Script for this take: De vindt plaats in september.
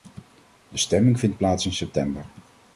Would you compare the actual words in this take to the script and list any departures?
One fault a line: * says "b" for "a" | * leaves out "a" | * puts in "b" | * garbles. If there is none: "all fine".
* puts in "stemming"